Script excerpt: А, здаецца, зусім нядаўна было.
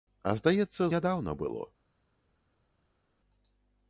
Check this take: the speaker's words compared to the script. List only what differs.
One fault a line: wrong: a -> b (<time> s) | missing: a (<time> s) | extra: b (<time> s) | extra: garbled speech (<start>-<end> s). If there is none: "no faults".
missing: зусім (0.9 s)